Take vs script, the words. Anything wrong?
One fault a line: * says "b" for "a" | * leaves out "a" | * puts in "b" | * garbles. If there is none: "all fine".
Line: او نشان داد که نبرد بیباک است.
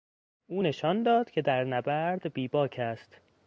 * puts in "در"